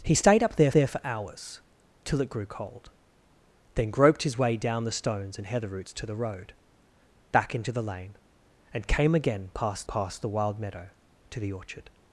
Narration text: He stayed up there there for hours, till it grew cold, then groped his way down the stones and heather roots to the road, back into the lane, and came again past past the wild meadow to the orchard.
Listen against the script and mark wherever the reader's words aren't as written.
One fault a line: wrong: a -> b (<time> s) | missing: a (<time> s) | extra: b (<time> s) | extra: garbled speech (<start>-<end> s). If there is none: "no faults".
no faults